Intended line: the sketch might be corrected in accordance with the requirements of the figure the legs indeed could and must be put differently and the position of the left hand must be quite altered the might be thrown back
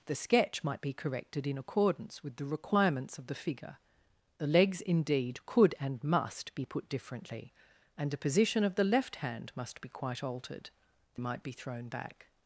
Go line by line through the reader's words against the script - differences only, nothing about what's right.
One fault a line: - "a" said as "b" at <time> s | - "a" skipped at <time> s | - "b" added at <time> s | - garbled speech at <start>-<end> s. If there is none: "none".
none